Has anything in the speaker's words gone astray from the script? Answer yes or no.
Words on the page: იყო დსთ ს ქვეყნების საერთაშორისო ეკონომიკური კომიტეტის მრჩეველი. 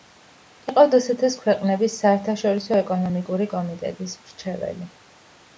no